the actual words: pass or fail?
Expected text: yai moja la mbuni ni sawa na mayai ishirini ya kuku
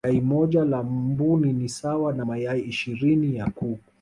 pass